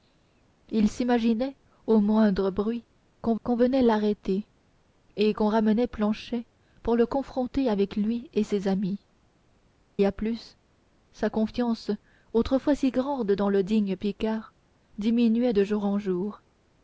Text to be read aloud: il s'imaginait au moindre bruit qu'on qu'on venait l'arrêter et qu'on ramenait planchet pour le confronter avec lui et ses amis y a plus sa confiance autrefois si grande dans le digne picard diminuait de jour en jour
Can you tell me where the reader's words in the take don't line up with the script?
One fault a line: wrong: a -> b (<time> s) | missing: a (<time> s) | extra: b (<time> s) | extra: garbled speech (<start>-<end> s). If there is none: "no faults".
no faults